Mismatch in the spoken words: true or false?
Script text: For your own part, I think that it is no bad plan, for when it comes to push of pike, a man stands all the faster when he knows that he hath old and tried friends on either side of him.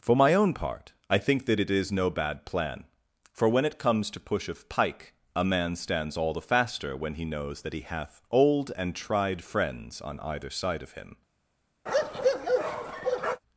true